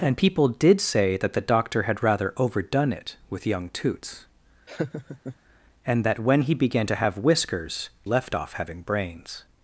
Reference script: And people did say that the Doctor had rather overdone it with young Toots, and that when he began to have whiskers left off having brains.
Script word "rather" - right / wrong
right